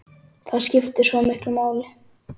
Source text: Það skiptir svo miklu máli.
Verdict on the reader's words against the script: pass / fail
pass